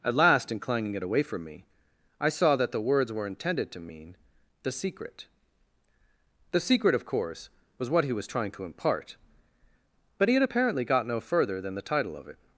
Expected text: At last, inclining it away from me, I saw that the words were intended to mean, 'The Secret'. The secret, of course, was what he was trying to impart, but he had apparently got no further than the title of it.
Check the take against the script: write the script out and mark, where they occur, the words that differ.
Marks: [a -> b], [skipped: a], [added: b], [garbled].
At last, inclining it away from me, I saw that the words were intended to mean, 'The Secret'. The secret, of course, was what he was trying to impart, but he had apparently got no further than the title of it.